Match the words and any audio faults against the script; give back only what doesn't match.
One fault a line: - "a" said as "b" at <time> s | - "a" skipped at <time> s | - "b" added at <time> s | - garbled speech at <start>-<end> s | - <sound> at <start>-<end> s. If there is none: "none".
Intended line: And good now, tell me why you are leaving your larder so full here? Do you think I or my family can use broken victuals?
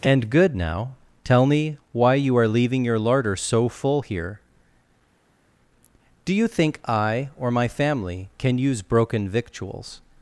none